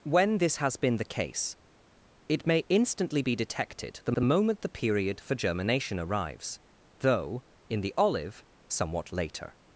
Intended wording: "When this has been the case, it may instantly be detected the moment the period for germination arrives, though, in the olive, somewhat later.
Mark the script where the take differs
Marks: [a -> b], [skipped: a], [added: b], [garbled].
"When this has been the case, it may instantly be detected the [added: the] moment the period for germination arrives, though, in the olive, somewhat later.